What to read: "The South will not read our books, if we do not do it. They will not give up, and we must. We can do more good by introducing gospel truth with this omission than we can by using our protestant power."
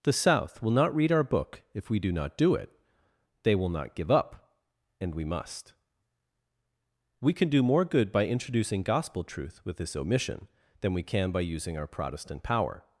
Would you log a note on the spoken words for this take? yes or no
yes